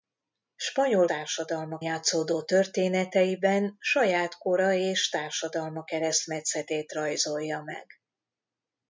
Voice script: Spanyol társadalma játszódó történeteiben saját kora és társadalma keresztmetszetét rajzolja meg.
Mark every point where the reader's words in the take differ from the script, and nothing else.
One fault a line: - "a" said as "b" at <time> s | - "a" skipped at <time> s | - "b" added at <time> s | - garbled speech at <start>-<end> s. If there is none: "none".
none